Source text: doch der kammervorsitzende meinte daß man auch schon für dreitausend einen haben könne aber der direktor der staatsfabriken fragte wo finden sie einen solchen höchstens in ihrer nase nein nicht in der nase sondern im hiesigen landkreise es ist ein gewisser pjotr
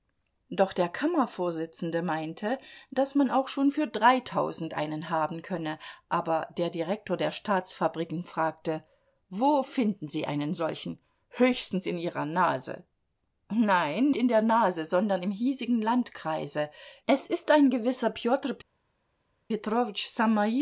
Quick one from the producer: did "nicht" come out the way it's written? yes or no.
no